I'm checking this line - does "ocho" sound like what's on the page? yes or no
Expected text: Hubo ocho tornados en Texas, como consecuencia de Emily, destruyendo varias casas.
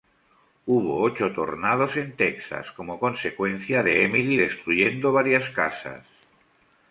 yes